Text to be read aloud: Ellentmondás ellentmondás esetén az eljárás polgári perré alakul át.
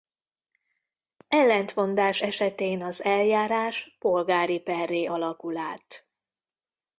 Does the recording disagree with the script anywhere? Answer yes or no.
yes